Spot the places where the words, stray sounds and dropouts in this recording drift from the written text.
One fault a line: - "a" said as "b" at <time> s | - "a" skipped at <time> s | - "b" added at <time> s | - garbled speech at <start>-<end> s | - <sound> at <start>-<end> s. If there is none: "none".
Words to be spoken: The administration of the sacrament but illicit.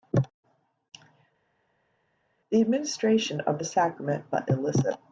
none